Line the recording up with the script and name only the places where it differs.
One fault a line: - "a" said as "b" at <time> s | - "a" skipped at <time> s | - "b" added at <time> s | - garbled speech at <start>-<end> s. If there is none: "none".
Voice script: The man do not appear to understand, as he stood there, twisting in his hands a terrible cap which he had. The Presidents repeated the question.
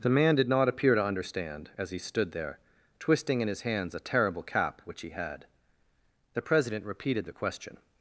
- "do" said as "did" at 0.3 s
- "Presidents" said as "President" at 6.4 s